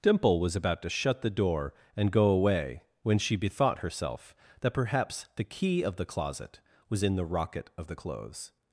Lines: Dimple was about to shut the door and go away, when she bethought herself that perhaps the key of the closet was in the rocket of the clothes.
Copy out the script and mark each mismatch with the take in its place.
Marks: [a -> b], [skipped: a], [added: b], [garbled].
Dimple was about to shut the door and go away, when she bethought herself that perhaps the key of the closet was in the rocket of the clothes.